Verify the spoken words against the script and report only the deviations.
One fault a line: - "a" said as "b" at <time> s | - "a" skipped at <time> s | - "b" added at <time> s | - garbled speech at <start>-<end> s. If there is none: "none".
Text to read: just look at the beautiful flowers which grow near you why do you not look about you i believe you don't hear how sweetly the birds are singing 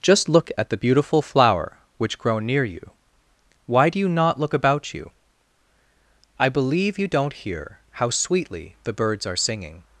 - "flowers" said as "flower" at 1.2 s